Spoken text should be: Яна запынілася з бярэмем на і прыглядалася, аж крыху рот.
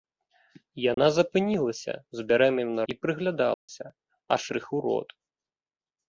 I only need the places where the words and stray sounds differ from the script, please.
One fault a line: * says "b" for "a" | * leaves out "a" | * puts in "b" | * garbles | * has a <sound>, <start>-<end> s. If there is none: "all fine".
* has a dropout, 0.9-1.0 s
* has a dropout, 3.5-3.7 s